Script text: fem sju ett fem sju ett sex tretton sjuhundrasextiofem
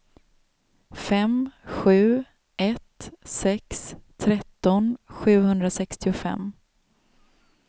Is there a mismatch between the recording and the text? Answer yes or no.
yes